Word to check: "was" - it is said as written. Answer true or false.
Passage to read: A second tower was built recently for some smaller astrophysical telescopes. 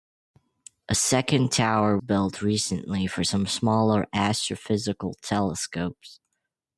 false